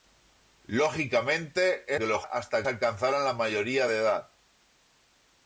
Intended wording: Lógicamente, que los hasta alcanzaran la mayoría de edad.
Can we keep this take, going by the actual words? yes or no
yes